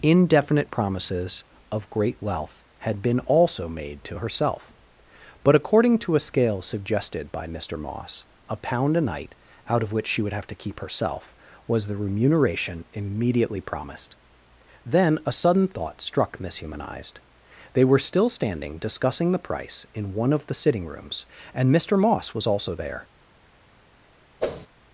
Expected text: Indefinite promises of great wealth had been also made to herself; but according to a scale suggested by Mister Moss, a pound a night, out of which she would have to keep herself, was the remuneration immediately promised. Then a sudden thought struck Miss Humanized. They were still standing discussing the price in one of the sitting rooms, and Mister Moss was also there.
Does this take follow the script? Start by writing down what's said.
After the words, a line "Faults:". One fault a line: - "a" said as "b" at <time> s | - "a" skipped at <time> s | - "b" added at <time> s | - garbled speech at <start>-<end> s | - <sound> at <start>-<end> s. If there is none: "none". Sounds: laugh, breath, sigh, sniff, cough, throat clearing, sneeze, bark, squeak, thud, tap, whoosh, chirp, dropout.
Indefinite promises of great wealth had been also made to herself; but according to a scale suggested by Mister Moss, a pound a night, out of which she would have to keep herself, was the remuneration immediately promised. Then a sudden thought struck Miss Humanized. They were still standing discussing the price in one of the sitting rooms, and Mister Moss was also there.
Faults:
- whoosh at 24.4-24.7 s